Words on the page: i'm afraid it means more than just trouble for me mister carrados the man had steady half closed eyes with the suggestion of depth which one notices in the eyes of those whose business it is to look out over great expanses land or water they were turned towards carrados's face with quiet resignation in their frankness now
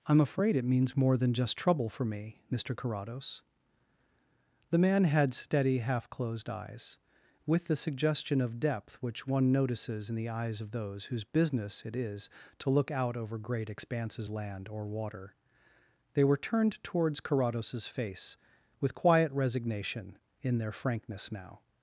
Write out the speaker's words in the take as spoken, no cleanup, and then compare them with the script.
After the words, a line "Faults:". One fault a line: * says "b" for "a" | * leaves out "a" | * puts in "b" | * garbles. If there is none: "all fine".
i'm afraid it means more than just trouble for me mister carrados the man had steady half closed eyes with the suggestion of depth which one notices in the eyes of those whose business it is to look out over great expanses land or water they were turned towards carrados's face with quiet resignation in their frankness now
Faults:
all fine